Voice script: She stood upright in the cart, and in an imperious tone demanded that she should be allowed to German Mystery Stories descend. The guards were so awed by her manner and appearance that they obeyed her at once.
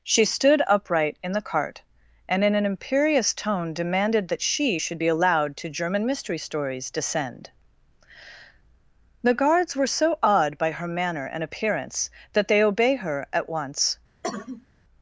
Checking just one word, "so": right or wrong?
right